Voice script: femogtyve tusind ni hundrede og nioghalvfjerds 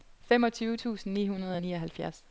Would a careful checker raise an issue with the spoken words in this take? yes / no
no